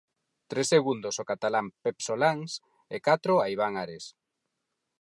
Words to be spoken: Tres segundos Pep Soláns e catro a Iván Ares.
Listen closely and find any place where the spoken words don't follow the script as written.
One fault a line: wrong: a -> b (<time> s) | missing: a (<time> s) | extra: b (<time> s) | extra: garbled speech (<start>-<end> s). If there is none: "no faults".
extra: ao catalán (1.2 s)